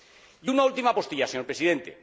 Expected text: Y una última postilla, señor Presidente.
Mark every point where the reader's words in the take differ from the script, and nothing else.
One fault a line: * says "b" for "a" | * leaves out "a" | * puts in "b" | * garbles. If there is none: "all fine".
all fine